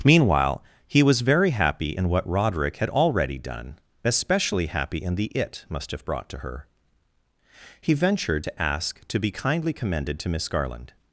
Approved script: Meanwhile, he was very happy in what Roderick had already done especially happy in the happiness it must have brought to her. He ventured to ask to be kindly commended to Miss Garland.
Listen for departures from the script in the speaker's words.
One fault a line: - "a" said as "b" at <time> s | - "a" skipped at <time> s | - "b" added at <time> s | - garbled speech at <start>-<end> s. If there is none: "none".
- "happiness" skipped at 5.2 s